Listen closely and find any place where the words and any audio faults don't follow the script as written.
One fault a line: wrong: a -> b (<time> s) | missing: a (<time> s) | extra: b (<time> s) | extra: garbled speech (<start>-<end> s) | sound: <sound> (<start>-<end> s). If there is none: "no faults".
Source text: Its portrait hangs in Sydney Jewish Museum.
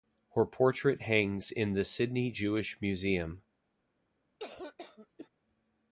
wrong: Its -> Her (0.3 s)
extra: the (1.7 s)
sound: cough (4.4-5.3 s)